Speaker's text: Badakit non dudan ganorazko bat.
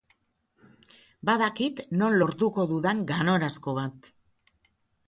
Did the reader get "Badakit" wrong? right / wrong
right